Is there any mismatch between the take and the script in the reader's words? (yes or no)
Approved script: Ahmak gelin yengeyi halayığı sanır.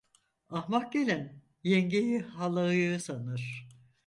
no